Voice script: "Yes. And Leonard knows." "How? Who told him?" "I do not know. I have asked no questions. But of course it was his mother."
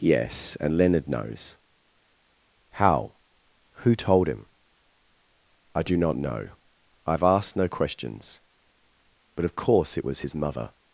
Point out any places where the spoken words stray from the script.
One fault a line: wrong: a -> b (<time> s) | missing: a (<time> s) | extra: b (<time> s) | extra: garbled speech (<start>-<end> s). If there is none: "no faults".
no faults